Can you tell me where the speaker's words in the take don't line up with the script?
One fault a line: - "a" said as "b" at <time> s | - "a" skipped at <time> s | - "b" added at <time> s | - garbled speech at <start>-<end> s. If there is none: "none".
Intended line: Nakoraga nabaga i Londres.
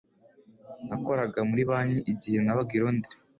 - "muri banki igihe" added at 1.5 s